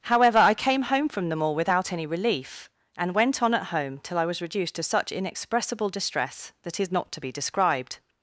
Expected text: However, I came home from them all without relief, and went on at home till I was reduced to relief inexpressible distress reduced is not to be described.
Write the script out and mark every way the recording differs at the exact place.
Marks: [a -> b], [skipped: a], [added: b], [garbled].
However, I came home from them all without [added: any] relief, and went on at home till I was reduced to [relief -> such] inexpressible distress [reduced -> that] is not to be described.